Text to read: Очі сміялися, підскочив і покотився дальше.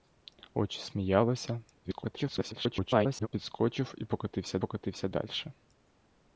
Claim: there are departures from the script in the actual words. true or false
true